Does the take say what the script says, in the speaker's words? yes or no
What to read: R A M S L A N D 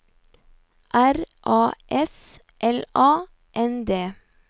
no